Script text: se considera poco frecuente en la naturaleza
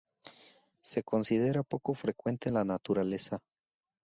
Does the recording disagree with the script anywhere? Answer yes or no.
no